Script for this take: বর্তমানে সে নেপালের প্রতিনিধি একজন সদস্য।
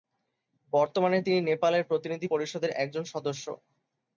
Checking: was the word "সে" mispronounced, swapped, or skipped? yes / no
yes